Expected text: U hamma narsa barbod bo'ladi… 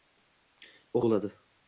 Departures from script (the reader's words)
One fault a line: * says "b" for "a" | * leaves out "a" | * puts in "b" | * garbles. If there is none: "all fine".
* leaves out "hamma narsa barbod"